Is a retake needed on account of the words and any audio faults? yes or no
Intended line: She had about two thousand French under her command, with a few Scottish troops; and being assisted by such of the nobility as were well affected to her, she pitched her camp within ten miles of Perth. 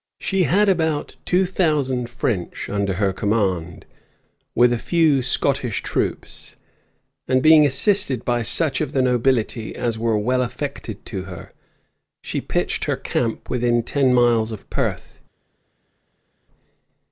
no